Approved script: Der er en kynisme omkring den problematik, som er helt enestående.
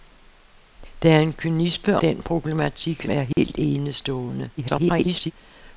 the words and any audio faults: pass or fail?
fail